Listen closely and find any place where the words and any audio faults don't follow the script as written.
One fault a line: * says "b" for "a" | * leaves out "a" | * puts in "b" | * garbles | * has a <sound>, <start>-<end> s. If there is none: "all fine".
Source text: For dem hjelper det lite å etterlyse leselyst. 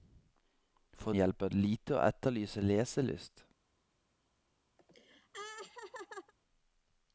* leaves out "dem"
* has a laugh, 4.8-6.3 s